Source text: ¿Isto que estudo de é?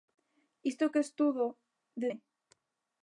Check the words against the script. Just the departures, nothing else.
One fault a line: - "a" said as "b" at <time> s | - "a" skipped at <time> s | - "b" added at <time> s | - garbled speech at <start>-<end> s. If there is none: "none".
none